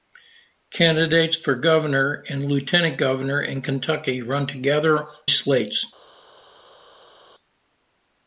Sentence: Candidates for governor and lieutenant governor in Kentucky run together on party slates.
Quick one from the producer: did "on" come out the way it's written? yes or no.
no